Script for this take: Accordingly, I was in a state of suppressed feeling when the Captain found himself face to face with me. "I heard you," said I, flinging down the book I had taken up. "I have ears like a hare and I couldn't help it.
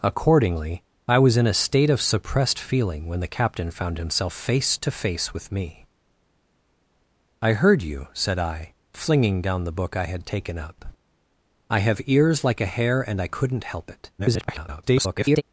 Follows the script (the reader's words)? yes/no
no